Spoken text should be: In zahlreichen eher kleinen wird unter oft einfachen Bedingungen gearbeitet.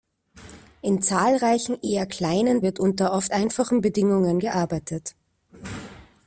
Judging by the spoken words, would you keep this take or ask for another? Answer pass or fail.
pass